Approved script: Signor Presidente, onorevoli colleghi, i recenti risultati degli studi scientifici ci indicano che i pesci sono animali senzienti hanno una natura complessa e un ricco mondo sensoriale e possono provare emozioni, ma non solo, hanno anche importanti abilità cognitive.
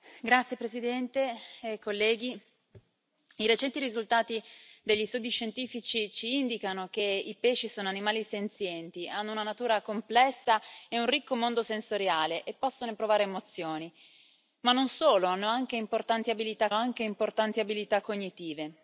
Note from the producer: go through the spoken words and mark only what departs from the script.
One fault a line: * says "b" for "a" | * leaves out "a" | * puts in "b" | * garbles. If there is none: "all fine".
* puts in "anche importanti abilità"